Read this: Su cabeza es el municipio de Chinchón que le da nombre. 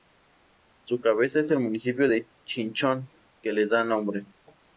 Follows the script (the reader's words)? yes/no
yes